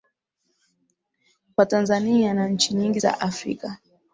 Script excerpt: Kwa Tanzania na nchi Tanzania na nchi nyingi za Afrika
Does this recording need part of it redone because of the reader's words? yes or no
yes